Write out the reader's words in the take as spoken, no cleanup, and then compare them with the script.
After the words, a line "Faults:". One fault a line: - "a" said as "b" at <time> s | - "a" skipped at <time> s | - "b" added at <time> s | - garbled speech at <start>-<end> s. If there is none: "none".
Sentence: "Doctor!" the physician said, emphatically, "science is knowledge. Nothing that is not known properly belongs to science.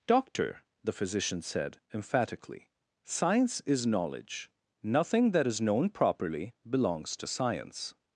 "Doctor!" the physician said, emphatically, "science is knowledge. Nothing that is known properly belongs to science.
Faults:
- "not" skipped at 5.6 s